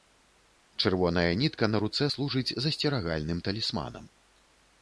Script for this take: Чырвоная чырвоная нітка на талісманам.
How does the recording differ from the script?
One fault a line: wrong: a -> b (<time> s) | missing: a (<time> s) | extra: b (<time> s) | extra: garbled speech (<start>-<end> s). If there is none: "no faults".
missing: чырвоная (1.3 s)
extra: руцэ служыць засцерагальным (1.8 s)